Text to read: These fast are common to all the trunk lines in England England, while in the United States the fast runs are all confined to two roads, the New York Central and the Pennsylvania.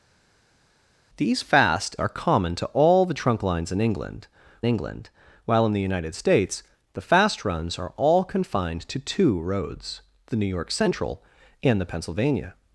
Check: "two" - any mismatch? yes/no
no